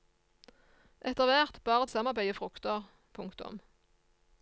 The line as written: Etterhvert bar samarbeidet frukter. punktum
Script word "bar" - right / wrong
right